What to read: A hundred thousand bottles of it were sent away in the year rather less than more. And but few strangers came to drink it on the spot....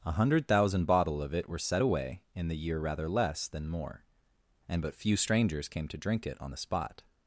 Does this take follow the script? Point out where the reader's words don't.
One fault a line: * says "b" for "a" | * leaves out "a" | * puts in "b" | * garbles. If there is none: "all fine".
* says "bottle" for "bottles"
* says "set" for "sent"